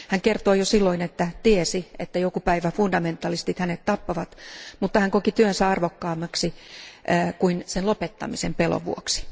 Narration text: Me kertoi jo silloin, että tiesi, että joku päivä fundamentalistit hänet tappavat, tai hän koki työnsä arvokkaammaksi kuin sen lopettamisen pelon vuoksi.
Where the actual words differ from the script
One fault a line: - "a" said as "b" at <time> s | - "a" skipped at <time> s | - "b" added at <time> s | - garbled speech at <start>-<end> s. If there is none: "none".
- "Me" said as "Hän" at 0.1 s
- "tai" said as "mutta" at 4.8 s